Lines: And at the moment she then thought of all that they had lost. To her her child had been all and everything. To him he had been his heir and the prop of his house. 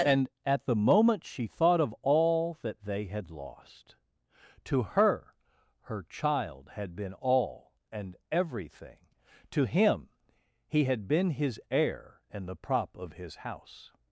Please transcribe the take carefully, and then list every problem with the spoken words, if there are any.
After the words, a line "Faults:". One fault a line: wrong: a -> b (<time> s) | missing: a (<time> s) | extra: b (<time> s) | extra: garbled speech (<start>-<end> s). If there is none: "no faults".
And at the moment she thought of all that they had lost. To her her child had been all and everything. To him he had been his heir and the prop of his house.
Faults:
missing: then (1.5 s)